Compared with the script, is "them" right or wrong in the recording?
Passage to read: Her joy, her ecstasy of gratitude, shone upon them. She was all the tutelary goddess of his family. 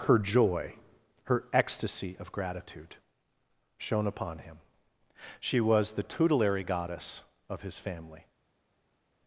wrong